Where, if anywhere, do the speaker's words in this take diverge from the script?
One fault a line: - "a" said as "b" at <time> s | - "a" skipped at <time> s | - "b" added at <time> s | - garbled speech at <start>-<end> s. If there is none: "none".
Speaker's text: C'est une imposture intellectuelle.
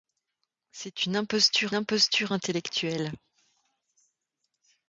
- "imposture" added at 1.7 s